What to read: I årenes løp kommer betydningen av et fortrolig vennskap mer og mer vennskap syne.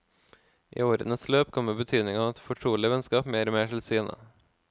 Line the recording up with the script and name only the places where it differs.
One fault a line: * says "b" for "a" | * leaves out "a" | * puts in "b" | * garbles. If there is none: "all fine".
* says "til" for "vennskap"